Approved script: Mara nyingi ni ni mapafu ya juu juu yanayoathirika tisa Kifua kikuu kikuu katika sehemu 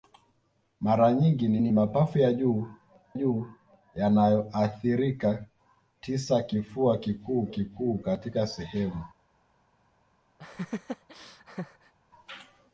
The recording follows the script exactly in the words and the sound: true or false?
false